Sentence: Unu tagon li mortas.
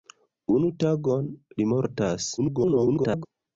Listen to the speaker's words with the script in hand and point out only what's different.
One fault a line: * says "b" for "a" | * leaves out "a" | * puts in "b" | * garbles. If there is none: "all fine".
* garbles